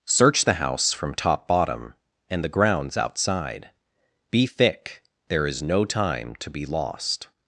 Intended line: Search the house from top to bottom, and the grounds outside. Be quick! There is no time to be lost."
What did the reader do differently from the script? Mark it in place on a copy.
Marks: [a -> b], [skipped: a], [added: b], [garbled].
Search the house from top [skipped: to] bottom, and the grounds outside. Be [quick! -> thick] There is no time to be lost."